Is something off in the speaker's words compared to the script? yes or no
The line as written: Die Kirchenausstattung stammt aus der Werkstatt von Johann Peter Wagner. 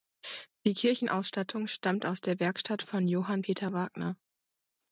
no